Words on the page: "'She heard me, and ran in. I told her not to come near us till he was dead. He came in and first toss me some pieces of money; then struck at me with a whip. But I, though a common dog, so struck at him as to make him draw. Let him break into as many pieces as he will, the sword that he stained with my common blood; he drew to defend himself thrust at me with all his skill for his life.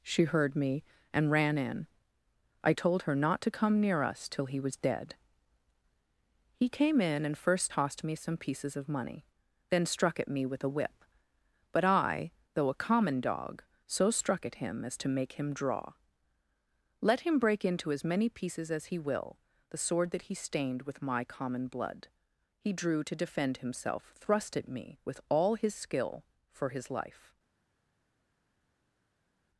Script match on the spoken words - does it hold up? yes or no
no